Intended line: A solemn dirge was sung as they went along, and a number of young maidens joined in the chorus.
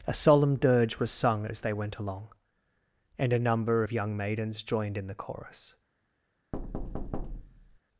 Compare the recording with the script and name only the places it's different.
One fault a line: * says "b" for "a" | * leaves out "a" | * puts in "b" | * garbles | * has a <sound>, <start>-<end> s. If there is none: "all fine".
* has a thud, 6.5-7.8 s